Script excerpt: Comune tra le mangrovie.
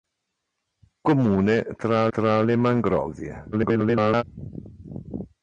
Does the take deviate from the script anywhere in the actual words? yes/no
yes